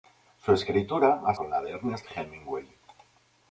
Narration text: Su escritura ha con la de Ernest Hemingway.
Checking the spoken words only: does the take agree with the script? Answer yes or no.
yes